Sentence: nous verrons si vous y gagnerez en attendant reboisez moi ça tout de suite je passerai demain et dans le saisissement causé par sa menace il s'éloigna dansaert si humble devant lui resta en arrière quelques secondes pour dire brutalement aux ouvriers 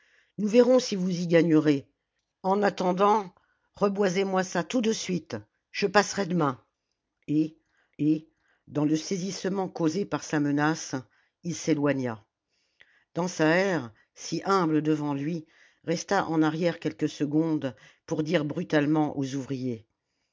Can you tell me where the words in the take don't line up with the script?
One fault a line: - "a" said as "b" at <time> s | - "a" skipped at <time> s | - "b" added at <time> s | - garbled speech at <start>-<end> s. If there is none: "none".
- "et" added at 8.0 s